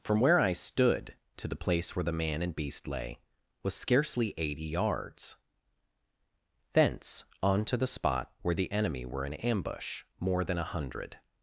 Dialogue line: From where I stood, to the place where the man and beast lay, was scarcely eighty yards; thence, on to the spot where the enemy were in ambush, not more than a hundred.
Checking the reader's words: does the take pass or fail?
fail